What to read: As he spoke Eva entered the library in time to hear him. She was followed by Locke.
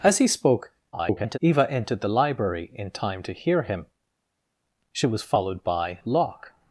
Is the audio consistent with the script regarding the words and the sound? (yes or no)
no